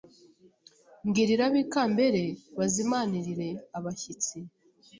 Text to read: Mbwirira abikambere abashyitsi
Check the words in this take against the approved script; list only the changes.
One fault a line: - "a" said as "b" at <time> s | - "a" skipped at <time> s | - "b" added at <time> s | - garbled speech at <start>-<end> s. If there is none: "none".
- "bazimanirire" added at 2.6 s